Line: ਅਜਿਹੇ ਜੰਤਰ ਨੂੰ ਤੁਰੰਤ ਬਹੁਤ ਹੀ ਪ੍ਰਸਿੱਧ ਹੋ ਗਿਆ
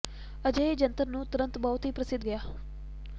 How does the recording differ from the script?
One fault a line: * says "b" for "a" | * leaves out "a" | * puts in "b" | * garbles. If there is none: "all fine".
* leaves out "ਹੋ"